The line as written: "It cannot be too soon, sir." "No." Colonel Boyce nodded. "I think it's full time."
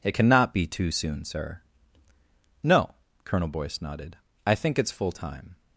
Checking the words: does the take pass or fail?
pass